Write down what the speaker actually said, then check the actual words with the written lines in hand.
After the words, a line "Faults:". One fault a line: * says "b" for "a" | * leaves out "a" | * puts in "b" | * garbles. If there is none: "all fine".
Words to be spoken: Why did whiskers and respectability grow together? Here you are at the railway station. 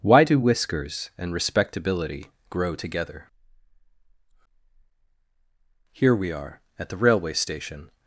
Why do whiskers and respectability grow together? Here we are at the railway station.
Faults:
* says "do" for "did"
* says "we" for "you"